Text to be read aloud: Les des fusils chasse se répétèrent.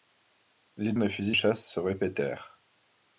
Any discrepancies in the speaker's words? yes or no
no